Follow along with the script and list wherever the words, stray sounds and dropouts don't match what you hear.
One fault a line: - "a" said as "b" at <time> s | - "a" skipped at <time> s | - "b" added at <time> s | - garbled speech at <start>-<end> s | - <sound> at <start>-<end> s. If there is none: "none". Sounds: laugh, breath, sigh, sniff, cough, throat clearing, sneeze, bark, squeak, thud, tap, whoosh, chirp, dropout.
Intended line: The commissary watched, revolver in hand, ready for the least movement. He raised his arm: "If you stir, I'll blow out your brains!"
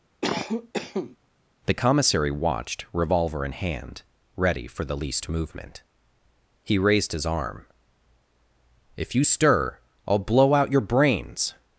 - cough at 0.2-1.2 s